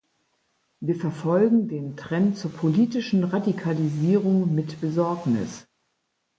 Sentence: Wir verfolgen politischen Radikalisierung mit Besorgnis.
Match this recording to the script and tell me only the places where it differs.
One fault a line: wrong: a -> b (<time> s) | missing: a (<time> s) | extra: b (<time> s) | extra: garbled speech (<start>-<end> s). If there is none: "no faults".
extra: den Trend zur (1.7 s)